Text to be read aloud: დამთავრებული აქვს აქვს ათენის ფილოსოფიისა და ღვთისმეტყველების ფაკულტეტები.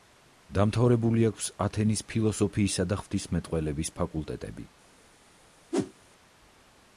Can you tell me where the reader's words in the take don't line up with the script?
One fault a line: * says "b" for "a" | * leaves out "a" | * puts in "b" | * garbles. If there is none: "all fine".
* leaves out "აქვს"